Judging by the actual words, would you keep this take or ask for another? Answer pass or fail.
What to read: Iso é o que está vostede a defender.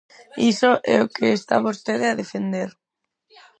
pass